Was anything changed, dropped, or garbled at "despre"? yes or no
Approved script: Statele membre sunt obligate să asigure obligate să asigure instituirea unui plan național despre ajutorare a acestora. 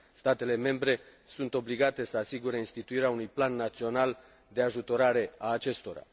yes